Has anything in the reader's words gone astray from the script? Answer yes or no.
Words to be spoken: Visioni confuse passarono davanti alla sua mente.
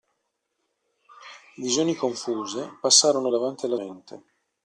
yes